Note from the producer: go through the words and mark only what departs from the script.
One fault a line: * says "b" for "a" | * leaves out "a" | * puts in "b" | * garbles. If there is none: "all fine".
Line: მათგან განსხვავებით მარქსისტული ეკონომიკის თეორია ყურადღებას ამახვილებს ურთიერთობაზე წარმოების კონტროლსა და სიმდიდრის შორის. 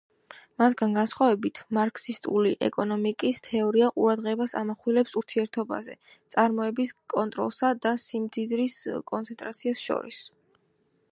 * puts in "კონცენტრაციას"